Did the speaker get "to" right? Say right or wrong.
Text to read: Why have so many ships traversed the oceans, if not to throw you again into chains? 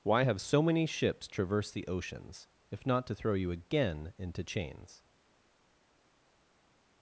right